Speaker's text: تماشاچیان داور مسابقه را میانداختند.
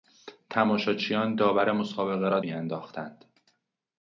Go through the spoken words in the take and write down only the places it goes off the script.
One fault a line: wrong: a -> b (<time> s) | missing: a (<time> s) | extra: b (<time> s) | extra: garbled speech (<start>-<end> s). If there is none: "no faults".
no faults